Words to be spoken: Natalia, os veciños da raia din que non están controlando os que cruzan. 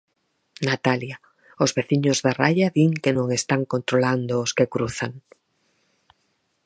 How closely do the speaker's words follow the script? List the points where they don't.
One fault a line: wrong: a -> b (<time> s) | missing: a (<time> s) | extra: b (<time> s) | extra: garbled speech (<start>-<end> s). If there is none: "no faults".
no faults